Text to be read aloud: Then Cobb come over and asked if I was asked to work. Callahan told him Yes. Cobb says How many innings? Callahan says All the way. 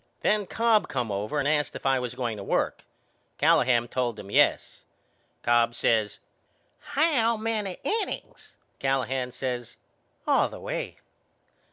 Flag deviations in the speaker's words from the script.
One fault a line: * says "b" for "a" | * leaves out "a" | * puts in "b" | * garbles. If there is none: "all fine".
* says "going" for "asked"